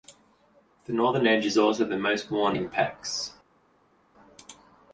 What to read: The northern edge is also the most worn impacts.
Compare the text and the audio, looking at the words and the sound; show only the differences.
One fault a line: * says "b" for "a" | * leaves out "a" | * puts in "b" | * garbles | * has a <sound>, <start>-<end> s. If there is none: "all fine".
all fine